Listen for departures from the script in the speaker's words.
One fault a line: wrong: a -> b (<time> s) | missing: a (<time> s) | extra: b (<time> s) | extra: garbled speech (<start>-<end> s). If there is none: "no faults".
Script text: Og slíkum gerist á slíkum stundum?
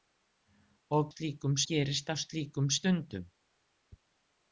no faults